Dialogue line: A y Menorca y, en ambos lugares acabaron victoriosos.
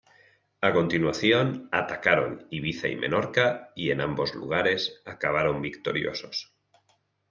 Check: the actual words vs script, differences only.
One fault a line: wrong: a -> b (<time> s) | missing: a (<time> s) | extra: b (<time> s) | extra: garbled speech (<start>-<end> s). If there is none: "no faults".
extra: continuación atacaron Ibiza (0.7 s)